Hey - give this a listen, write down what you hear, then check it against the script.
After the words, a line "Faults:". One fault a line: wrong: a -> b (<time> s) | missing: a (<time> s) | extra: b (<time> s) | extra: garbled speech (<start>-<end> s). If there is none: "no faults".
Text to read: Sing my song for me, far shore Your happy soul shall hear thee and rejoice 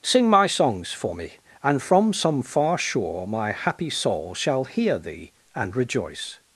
Sing my songs for me, and from some far shore My happy soul shall hear thee and rejoice
Faults:
wrong: song -> songs (0.5 s)
extra: and from some (1.6 s)
wrong: Your -> My (3.3 s)